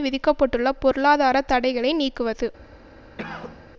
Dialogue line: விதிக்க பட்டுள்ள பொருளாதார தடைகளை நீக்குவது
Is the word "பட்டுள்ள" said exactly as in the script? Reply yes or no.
yes